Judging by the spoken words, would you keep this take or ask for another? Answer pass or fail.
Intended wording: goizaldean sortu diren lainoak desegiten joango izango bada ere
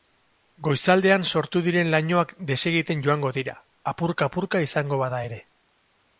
fail